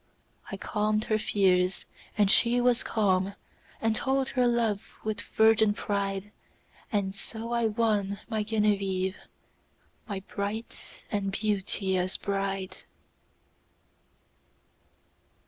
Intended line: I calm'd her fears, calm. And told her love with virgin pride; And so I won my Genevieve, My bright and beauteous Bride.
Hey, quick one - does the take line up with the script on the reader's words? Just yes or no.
no